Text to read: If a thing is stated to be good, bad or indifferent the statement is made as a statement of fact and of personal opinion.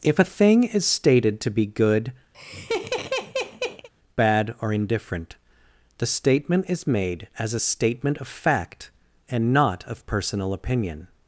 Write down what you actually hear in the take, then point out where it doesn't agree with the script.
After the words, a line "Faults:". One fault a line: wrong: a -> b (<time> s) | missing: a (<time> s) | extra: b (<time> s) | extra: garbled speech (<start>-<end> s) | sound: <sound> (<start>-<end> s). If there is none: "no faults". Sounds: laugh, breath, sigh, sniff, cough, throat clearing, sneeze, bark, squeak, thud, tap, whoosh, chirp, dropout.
If a thing is stated to be good, bad or indifferent the statement is made as a statement of fact and not of personal opinion.
Faults:
sound: laugh (2.3-3.9 s)
extra: not (9.5 s)